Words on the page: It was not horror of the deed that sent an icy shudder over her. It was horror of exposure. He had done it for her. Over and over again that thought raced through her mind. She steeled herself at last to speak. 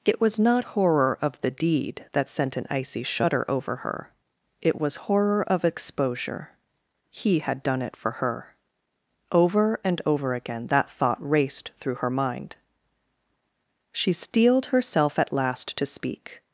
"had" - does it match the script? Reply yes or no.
yes